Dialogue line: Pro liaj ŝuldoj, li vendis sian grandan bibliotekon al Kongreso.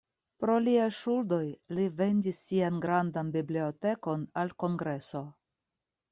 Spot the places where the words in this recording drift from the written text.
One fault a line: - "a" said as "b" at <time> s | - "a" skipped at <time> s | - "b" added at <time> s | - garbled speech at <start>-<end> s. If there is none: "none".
none